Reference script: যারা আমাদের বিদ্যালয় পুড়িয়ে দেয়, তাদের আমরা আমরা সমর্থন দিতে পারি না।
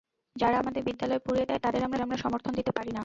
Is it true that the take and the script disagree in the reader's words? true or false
false